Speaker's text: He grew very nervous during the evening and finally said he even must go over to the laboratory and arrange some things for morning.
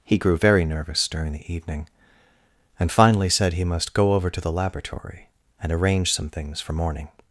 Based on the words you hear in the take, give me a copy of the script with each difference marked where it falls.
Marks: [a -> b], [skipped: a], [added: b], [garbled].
He grew very nervous during the evening and finally said he [skipped: even] must go over to the laboratory and arrange some things for morning.